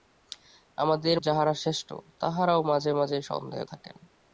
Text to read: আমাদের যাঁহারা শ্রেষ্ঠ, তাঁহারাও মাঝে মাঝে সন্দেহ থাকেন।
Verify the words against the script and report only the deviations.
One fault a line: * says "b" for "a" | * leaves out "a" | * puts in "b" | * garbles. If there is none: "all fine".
all fine